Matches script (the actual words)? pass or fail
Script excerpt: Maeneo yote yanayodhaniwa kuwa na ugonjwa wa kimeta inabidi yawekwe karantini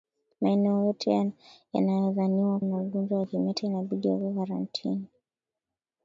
fail